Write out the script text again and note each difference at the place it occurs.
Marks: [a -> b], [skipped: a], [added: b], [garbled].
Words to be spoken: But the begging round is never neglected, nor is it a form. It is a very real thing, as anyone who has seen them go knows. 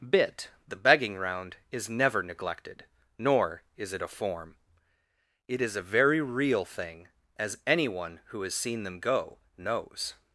[But -> Bit] the begging round is never neglected, nor is it a form. It is a very real thing, as anyone who has seen them go knows.